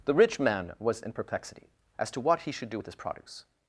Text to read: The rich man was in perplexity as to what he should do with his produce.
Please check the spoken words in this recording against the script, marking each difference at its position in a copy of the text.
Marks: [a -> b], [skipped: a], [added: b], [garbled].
The rich man was in perplexity as to what he should do with his produce.